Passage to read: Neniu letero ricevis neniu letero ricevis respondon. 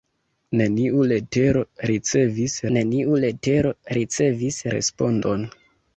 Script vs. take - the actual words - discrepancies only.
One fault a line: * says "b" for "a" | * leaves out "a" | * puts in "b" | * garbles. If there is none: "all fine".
all fine